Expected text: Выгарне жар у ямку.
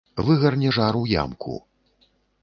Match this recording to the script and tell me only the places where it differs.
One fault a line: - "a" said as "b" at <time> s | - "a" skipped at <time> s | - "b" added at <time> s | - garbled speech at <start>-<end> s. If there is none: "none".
none